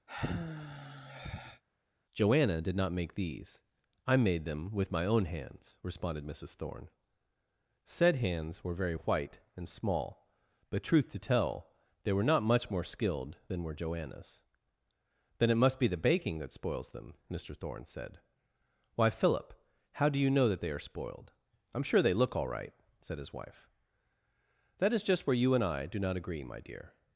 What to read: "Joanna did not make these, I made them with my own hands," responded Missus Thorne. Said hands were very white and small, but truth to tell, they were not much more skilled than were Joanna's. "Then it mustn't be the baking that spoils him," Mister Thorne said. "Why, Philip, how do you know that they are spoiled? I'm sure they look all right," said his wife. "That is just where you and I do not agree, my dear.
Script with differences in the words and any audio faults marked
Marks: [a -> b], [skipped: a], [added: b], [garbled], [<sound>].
[sigh] "Joanna did not make these, I made them with my own hands," responded Missus Thorne. Said hands were very white and small, but truth to tell, they were not much more skilled than were Joanna's. "Then it [mustn't -> must] be the baking that spoils [him," -> them] Mister Thorne said. "Why, Philip, how do you know that they are spoiled? I'm sure they look all right," said his wife. "That is just where you and I do not agree, my dear.